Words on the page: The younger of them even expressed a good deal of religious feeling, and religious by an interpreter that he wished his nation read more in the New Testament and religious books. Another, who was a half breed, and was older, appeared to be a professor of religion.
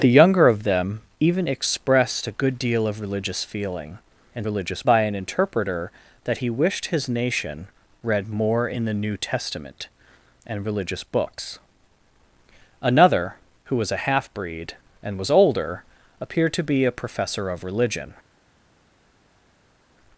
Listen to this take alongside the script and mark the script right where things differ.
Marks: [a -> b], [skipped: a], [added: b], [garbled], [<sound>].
The younger of them even expressed a good deal of religious feeling, and religious by an interpreter that he wished his nation read more in the New Testament and religious books. Another, who was a half breed, and was older, appeared to be a professor of religion.